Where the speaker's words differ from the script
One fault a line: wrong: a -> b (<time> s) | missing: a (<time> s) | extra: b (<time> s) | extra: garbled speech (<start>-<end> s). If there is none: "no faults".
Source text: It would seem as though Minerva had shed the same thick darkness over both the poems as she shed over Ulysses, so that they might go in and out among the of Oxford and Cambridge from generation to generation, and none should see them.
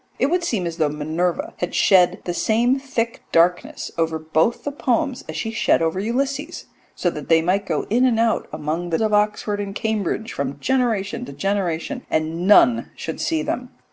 no faults